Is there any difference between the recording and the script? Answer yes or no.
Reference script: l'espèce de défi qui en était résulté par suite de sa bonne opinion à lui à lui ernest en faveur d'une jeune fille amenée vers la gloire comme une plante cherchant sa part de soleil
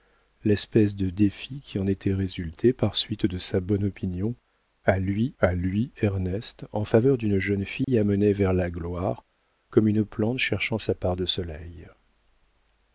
no